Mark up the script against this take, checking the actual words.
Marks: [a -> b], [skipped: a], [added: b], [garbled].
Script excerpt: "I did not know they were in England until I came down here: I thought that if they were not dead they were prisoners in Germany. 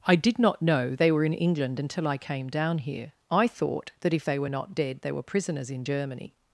"I did not know they were in England until I came down here: I thought that if they were not dead they were prisoners in Germany.